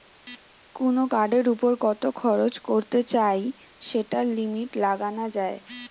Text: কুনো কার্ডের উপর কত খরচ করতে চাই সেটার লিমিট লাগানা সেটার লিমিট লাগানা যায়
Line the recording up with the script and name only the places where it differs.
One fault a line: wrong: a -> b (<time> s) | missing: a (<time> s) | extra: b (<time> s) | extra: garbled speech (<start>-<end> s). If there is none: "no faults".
missing: সেটার লিমিট লাগানা (5.3 s)